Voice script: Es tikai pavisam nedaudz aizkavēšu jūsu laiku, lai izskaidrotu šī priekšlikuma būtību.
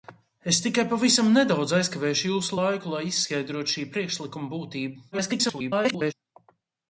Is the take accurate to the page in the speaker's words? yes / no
no